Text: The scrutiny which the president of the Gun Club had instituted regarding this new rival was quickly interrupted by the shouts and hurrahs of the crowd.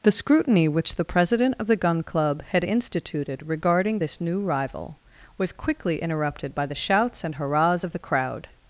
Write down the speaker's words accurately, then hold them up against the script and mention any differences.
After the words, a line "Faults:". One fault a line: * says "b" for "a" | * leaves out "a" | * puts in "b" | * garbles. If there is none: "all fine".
The scrutiny which the president of the Gun Club had instituted regarding this new rival was quickly interrupted by the shouts and hurrahs of the crowd.
Faults:
all fine